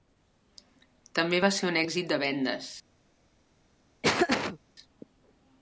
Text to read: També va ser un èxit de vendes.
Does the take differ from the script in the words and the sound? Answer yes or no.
yes